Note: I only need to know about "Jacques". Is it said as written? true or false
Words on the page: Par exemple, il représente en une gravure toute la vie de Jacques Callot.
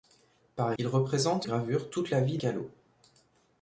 false